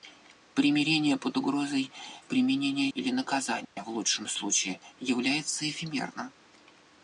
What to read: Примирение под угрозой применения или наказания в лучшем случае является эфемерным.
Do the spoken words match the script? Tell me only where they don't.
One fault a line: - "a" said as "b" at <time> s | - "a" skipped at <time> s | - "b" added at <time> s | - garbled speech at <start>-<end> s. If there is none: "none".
none